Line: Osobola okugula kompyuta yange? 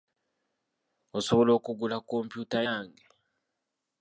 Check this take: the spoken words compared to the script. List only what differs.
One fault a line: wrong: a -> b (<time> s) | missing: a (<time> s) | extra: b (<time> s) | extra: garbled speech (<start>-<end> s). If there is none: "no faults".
no faults